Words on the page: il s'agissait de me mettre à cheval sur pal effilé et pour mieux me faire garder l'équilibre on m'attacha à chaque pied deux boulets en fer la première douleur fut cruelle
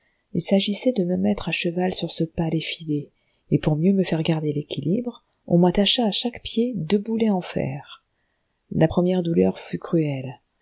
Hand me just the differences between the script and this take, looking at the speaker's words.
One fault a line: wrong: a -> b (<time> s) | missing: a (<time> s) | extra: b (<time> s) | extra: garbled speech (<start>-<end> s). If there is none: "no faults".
extra: ce (2.1 s)